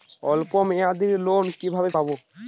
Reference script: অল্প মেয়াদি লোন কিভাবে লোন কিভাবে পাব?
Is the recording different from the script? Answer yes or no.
yes